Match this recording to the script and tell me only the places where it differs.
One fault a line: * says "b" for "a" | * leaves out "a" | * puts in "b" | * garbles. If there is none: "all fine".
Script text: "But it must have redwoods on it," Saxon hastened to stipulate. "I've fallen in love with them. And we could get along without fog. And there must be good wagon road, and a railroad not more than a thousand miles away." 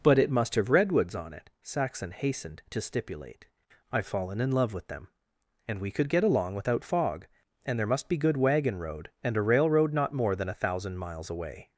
all fine